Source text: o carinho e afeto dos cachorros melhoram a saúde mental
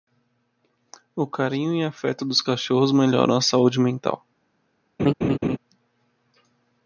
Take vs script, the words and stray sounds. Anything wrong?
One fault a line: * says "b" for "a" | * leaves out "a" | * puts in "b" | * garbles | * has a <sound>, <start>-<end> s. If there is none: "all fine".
* has a laugh, 5.0-5.6 s